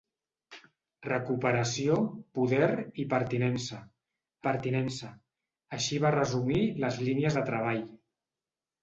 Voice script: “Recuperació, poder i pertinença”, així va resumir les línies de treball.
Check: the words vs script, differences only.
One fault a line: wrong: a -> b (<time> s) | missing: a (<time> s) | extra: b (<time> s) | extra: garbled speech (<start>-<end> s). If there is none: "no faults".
extra: pertinença (4.4 s)